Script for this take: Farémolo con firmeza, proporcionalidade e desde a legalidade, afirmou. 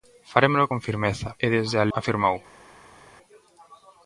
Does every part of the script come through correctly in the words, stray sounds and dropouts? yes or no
no